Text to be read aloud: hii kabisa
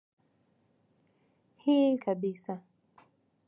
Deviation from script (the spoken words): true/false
false